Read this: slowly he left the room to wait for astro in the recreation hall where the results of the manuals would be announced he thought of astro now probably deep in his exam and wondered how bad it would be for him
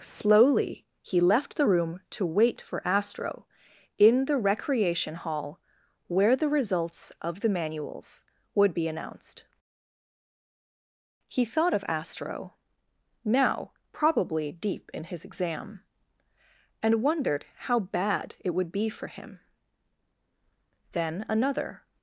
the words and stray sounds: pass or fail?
fail